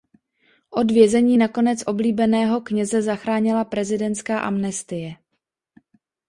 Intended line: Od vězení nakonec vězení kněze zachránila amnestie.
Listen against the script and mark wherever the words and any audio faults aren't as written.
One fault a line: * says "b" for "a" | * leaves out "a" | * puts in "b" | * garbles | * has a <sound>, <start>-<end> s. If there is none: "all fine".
* says "oblíbeného" for "vězení"
* puts in "prezidentská"